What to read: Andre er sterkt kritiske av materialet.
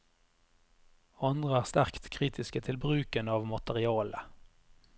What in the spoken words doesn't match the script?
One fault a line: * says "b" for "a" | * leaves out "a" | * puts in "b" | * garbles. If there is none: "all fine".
* puts in "til bruken"